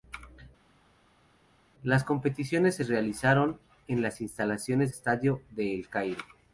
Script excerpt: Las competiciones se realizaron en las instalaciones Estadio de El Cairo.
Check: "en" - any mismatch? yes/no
no